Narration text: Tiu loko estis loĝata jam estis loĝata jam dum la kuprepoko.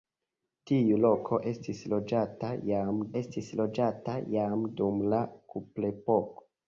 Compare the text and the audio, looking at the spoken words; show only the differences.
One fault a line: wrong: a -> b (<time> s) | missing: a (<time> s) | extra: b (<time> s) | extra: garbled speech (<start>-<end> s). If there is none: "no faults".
no faults